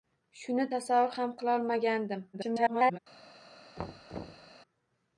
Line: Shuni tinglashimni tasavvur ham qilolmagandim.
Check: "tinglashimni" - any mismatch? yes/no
yes